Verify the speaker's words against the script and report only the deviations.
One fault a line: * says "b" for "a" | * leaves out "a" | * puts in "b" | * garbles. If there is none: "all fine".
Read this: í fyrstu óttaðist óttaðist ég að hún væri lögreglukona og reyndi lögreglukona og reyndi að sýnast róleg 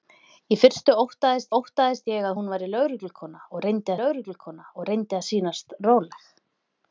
all fine